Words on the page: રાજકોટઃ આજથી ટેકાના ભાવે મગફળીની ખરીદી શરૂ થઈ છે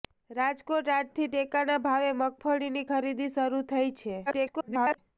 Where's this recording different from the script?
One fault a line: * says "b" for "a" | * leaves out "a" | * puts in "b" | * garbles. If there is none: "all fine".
* garbles